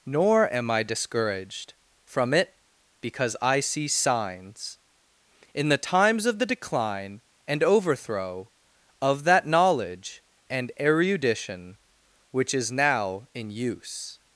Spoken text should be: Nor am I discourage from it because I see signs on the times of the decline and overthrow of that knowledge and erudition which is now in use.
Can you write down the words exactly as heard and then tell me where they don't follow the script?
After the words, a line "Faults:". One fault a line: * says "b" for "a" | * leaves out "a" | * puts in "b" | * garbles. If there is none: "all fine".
Nor am I discouraged from it because I see signs in the times of the decline and overthrow of that knowledge and erudition which is now in use.
Faults:
* says "discouraged" for "discourage"
* says "in" for "on"